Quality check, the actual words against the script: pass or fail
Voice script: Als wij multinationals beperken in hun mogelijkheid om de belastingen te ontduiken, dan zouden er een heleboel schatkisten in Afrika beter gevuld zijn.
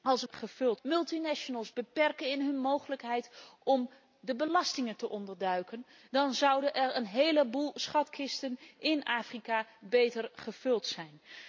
fail